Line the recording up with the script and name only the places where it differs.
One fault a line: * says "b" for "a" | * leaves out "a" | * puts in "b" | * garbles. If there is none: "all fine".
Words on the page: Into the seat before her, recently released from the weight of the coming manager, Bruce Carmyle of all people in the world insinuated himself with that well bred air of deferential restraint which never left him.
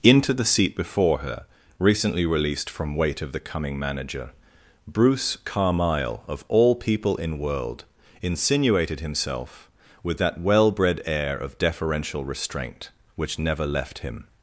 * leaves out "the"
* leaves out "the"